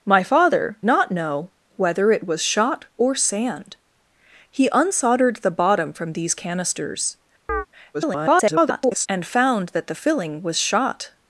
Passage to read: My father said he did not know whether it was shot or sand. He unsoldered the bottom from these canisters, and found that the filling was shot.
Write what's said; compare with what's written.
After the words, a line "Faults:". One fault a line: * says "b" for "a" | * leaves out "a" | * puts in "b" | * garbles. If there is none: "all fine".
My father not know whether it was shot or sand. He unsoldered the bottom from these canisters, [garbled] and found that the filling was shot.
Faults:
* leaves out "said he did"
* garbles